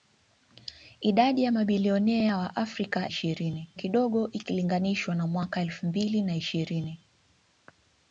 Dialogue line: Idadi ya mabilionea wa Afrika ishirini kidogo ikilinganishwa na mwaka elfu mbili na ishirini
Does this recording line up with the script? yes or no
yes